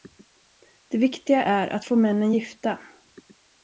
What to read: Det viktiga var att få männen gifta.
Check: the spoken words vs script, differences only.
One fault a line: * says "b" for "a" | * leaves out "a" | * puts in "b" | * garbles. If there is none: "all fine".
* says "är" for "var"